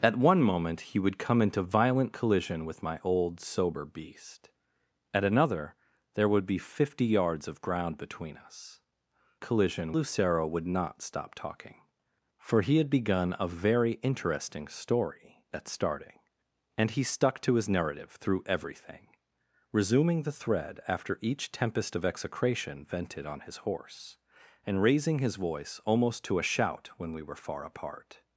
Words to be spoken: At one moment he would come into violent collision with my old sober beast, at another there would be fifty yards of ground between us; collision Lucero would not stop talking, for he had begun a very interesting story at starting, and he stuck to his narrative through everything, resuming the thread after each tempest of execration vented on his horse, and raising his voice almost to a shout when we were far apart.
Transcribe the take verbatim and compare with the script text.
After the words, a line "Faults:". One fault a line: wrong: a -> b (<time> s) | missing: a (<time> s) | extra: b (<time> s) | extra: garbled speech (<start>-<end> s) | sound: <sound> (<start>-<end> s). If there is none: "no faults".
At one moment he would come into violent collision with my old sober beast, at another there would be fifty yards of ground between us; collision Lucero would not stop talking, for he had begun a very interesting story at starting, and he stuck to his narrative through everything, resuming the thread after each tempest of execration vented on his horse, and raising his voice almost to a shout when we were far apart.
Faults:
no faults